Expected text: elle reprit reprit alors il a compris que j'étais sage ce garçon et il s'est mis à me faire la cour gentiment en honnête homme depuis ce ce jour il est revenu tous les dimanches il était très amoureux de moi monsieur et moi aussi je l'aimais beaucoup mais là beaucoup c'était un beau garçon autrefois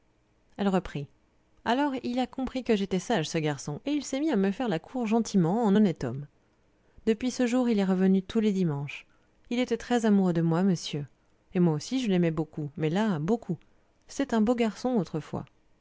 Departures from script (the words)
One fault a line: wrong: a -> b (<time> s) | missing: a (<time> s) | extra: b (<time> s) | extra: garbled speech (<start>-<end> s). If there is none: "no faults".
missing: reprit (1.1 s)
missing: ce (7.5 s)